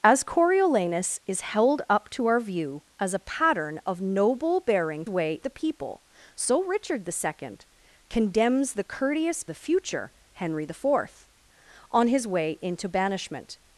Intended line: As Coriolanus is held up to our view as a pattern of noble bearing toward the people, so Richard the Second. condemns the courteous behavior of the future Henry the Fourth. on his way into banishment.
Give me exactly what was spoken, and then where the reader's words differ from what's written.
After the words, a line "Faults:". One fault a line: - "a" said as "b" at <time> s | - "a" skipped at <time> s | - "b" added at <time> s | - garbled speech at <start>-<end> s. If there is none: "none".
As Coriolanus is held up to our view as a pattern of noble bearing way the people, so Richard the Second. condemns the courteous the future Henry the Fourth. on his way into banishment.
Faults:
- "toward" said as "way" at 5.1 s
- "behavior of" skipped at 9.4 s